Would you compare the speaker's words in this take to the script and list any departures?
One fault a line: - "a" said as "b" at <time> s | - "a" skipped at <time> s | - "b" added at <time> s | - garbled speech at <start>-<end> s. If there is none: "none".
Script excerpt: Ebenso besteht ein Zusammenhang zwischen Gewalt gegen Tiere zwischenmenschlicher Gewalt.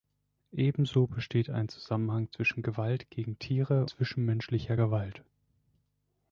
none